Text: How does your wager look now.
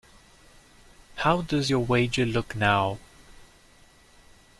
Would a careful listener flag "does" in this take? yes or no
no